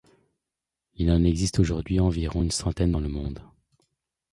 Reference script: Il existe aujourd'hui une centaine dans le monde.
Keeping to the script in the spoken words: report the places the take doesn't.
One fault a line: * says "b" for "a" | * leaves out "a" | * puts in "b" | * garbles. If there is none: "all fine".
* puts in "en"
* puts in "environ"